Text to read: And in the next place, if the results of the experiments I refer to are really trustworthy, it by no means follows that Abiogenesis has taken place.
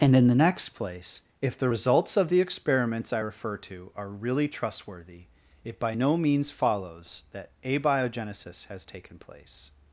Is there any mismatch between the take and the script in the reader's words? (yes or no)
no